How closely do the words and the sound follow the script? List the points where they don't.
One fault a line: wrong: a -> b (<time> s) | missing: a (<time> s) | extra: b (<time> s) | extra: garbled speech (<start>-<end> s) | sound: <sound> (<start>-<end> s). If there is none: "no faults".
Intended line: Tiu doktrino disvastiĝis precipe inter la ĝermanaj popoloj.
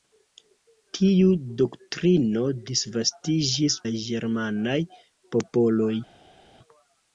missing: precipe inter (3.8 s)